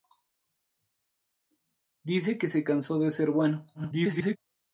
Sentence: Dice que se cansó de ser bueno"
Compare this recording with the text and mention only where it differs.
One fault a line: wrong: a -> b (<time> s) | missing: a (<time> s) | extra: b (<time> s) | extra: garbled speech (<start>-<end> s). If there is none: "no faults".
extra: garbled speech (3.7-4.4 s)